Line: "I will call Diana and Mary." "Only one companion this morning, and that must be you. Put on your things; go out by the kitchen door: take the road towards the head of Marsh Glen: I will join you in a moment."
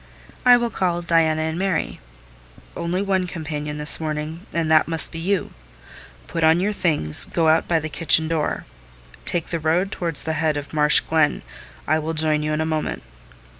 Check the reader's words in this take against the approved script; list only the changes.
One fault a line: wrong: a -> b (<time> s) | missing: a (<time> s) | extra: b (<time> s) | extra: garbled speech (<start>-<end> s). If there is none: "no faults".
no faults